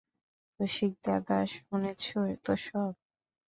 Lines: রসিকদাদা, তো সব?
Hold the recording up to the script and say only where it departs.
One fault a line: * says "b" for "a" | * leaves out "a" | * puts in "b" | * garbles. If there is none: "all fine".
* puts in "শুনেছ"